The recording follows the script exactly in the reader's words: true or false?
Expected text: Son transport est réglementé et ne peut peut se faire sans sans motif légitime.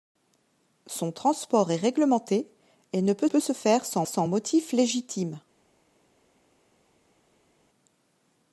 true